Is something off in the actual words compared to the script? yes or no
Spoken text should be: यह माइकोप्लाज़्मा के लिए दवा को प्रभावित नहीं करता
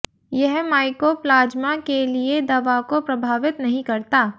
no